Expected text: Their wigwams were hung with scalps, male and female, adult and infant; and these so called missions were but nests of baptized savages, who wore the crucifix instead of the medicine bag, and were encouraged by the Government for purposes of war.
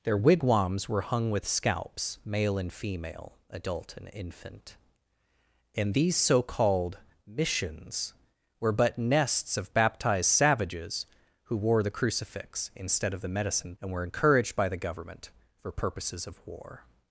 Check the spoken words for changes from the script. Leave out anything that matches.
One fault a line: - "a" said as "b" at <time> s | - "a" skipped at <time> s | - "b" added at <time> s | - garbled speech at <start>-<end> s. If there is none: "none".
- "bag" skipped at 13.8 s